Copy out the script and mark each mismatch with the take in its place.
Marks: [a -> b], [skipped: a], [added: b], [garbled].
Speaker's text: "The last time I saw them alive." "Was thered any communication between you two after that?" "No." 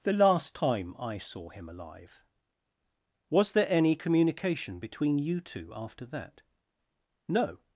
"The last time I saw [them -> him] alive." "Was [thered -> there] any communication between you two after that?" "No."